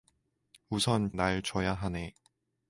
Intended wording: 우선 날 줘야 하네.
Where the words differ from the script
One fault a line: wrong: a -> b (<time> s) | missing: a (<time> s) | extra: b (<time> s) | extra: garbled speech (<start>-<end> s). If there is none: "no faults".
no faults